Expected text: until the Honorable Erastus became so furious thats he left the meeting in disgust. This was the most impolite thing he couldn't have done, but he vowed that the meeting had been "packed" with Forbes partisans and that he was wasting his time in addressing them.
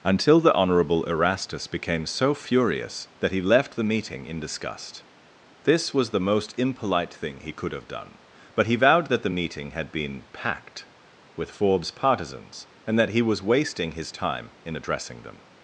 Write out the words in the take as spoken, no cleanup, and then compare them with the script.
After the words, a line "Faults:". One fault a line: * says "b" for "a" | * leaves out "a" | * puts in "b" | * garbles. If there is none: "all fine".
until the Honorable Erastus became so furious that he left the meeting in disgust. This was the most impolite thing he could have done, but he vowed that the meeting had been "packed" with Forbes partisans and that he was wasting his time in addressing them.
Faults:
* says "that" for "thats"
* says "could" for "couldn't"